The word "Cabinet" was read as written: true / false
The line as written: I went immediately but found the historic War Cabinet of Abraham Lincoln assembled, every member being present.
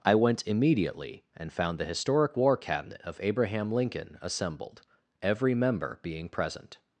true